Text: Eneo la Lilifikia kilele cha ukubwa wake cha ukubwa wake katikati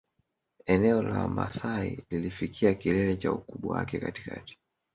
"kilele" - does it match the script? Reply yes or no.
yes